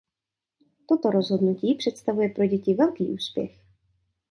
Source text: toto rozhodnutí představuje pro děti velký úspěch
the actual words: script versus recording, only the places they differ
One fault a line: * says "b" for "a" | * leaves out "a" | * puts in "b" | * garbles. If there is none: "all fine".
all fine